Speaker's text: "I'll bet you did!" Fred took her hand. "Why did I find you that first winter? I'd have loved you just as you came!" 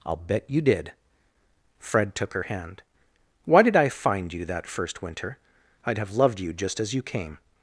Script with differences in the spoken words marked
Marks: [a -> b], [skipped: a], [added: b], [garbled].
"I'll bet you did!" Fred took her hand. "Why did I find you that first winter? I'd have loved you just as you came!"